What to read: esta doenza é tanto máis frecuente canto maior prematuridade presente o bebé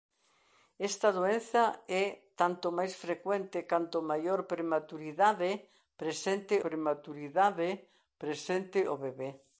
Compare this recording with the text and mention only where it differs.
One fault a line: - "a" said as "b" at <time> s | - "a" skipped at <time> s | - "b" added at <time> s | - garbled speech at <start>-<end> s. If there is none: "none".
- "prematuridade presente" added at 6.6 s